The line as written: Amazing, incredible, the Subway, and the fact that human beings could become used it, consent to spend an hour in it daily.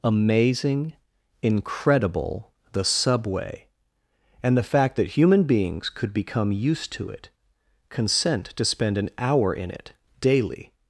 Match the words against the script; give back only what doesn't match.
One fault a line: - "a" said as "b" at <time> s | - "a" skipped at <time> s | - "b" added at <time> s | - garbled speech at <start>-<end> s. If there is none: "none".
- "to" added at 6.9 s